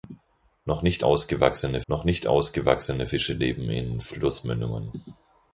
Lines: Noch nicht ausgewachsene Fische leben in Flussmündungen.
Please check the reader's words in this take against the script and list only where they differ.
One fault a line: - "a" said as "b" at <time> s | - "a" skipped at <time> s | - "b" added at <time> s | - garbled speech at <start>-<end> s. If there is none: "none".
- "noch nicht ausgewachsene" added at 1.9 s